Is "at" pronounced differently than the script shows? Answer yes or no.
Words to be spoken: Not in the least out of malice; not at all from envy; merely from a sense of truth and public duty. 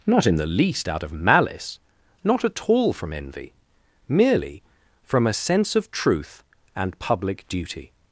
no